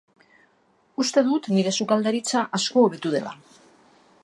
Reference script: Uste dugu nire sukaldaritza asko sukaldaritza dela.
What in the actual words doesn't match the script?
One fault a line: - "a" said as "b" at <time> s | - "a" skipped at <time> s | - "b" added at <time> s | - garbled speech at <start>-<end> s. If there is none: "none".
- "dugu" said as "dut" at 1.3 s
- "sukaldaritza" said as "hobetu" at 2.9 s